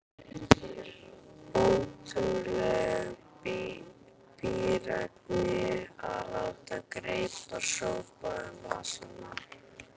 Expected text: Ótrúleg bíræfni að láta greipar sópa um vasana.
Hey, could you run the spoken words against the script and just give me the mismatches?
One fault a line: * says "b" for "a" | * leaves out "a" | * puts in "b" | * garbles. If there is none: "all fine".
all fine